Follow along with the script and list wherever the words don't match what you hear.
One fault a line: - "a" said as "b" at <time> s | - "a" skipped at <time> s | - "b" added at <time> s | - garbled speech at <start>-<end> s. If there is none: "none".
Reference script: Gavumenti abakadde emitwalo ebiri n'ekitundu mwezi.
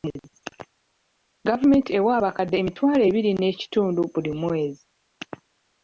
- "ewa" added at 2.0 s
- "buli" added at 4.1 s